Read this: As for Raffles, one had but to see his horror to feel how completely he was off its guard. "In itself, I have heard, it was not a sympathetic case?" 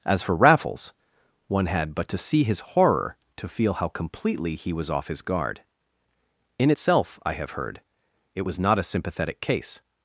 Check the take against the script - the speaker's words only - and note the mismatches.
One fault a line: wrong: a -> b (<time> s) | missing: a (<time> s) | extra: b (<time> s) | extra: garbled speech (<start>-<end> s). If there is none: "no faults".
wrong: its -> his (5.1 s)